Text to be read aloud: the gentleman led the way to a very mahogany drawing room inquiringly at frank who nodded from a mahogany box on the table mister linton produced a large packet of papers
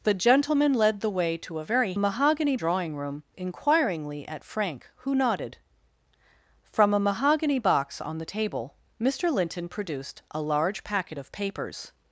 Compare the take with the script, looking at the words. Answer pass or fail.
pass